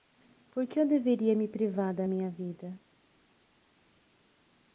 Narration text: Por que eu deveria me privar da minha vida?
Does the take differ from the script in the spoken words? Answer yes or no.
no